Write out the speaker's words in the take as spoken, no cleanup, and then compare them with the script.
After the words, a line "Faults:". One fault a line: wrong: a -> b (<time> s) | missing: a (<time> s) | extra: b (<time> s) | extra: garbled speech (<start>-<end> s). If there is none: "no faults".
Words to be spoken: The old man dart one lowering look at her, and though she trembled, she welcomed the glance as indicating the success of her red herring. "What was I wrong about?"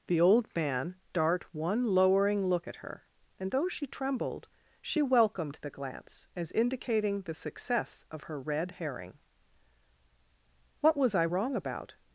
The old man dart one lowering look at her, and though she trembled, she welcomed the glance as indicating the success of her red herring. "What was I wrong about?"
Faults:
no faults